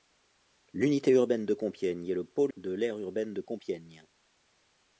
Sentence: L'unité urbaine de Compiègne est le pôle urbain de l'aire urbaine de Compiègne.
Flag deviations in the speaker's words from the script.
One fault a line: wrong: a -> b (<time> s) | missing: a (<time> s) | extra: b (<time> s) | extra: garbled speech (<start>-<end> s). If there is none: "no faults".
missing: urbain (2.5 s)